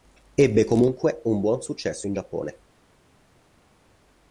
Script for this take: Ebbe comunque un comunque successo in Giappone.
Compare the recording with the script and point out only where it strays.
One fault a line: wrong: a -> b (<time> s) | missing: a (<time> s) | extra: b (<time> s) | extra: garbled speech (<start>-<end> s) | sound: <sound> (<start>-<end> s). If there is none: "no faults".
wrong: comunque -> buon (1.4 s)